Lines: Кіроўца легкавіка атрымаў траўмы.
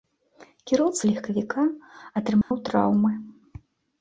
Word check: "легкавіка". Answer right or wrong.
right